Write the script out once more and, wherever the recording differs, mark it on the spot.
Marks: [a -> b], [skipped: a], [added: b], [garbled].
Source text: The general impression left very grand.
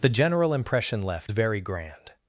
The general impression left very grand.